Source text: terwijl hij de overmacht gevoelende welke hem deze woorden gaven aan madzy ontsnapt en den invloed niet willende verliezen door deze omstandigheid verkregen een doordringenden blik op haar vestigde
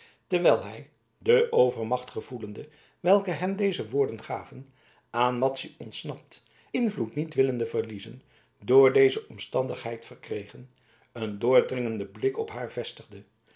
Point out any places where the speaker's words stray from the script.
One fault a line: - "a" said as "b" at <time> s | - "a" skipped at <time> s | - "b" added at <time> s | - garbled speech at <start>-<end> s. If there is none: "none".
- "en den" skipped at 6.4 s